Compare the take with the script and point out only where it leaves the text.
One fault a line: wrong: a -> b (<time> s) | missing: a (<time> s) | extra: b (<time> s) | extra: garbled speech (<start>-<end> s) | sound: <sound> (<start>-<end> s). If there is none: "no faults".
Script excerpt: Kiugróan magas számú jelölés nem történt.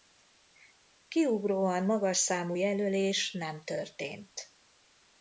no faults